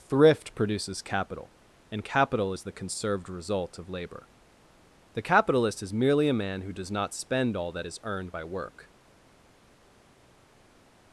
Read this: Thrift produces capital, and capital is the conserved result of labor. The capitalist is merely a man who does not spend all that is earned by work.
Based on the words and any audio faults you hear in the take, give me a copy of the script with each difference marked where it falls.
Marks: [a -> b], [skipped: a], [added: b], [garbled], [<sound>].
Thrift produces capital, and capital is the conserved result of labor. The capitalist is merely a man who does not spend all that is earned by work.